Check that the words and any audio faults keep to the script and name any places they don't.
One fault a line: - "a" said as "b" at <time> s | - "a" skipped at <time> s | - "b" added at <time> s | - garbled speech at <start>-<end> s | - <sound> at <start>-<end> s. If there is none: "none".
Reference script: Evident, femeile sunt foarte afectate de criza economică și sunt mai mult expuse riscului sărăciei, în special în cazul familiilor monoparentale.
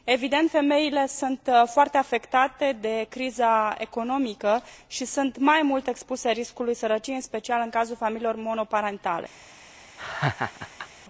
- laugh at 10.0-10.9 s